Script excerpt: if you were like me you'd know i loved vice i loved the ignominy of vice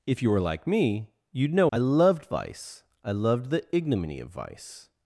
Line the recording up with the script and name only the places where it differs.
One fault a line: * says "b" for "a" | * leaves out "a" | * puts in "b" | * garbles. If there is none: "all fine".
all fine